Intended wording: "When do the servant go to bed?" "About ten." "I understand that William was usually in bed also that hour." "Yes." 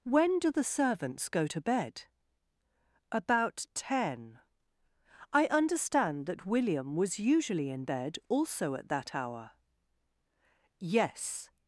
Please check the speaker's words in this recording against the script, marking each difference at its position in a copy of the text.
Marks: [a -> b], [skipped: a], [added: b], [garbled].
"When do the [servant -> servants] go to bed?" "About ten." "I understand that William was usually in bed also [added: at] that hour." "Yes."